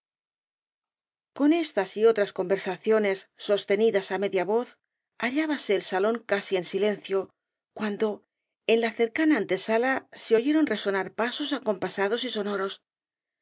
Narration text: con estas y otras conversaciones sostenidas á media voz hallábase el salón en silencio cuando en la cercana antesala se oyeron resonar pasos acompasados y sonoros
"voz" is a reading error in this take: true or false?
false